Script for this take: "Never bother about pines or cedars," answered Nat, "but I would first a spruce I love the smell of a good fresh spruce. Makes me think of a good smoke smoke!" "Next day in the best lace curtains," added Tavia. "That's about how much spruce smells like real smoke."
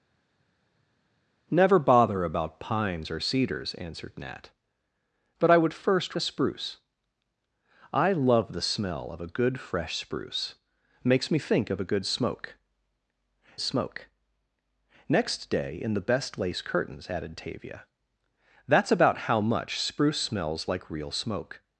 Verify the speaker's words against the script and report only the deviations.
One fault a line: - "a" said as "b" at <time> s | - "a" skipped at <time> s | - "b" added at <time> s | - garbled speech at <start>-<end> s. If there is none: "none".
none